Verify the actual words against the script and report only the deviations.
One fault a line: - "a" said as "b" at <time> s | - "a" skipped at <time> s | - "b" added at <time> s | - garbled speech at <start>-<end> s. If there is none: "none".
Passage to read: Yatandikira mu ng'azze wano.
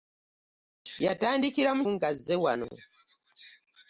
none